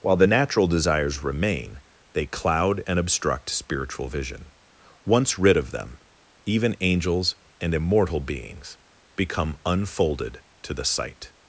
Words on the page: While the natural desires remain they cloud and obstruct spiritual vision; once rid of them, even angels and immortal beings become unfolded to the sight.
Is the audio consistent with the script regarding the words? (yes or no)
yes